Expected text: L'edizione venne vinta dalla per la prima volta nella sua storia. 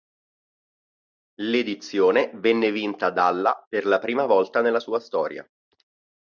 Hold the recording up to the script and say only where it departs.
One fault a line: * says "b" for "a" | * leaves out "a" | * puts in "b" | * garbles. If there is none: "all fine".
all fine